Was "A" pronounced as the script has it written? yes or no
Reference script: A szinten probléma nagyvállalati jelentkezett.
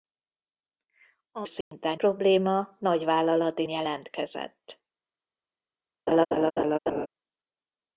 yes